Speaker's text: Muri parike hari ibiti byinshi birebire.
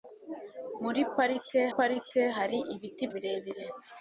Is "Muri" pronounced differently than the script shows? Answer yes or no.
no